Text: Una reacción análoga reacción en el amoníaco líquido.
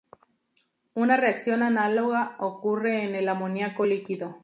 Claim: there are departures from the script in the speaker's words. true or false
true